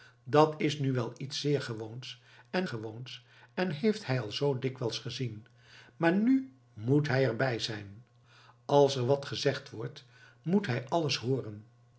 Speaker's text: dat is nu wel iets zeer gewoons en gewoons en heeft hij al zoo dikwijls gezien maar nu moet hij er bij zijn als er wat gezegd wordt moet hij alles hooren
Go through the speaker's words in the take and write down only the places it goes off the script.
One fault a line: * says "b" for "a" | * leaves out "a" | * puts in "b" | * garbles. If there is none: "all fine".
all fine